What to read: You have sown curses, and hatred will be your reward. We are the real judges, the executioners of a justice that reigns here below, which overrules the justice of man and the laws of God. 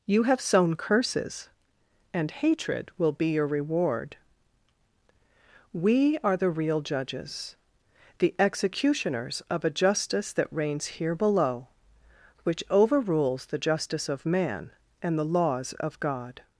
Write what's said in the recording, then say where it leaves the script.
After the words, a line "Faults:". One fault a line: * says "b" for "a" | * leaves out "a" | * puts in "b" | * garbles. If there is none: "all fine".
You have sown curses, and hatred will be your reward. We are the real judges, the executioners of a justice that reigns here below, which overrules the justice of man and the laws of God.
Faults:
all fine